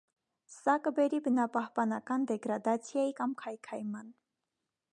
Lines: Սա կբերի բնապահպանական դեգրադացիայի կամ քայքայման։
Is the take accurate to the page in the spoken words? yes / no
yes